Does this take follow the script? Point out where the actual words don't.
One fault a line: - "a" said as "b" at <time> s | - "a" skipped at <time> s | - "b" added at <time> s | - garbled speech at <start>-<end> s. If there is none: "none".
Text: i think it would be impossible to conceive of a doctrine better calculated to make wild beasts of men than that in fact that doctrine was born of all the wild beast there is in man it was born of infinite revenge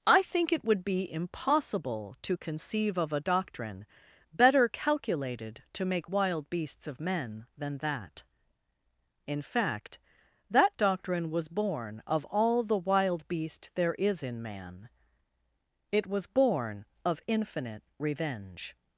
none